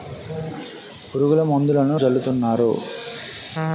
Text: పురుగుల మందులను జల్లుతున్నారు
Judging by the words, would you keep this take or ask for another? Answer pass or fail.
pass